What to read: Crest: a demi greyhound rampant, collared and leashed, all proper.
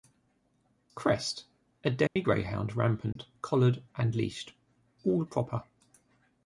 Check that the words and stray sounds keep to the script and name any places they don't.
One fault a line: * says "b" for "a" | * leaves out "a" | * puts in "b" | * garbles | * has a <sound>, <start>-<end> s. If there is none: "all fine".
* has a dropout, 2.1-2.2 s
* has a dropout, 3.1-3.2 s